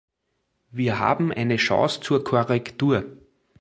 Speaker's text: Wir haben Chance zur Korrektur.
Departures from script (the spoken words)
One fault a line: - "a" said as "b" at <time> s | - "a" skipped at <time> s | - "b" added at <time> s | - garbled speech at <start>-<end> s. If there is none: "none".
- "eine" added at 1.3 s